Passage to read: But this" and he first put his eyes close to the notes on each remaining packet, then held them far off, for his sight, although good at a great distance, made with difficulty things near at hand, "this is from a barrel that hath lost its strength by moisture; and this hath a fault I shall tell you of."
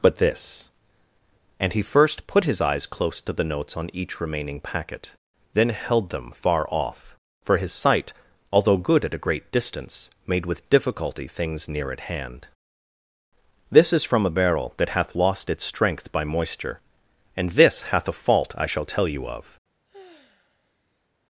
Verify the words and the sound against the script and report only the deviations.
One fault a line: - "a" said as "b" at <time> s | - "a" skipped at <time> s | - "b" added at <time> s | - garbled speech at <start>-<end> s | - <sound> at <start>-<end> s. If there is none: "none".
- sigh at 19.8-21.1 s